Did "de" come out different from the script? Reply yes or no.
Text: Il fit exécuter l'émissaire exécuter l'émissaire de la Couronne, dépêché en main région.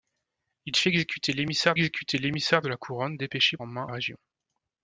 no